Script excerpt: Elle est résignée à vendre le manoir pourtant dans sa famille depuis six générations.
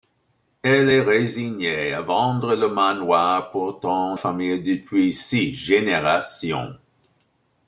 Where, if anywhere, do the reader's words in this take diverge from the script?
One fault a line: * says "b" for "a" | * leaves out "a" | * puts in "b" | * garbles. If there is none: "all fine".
* leaves out "dans sa"